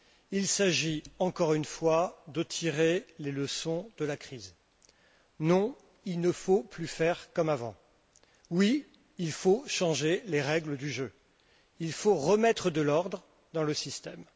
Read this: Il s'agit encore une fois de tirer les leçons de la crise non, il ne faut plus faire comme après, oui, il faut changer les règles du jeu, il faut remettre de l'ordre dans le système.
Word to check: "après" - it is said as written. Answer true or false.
false